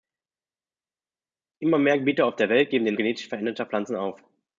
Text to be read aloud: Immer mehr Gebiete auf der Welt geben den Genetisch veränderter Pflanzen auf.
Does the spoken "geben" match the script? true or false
true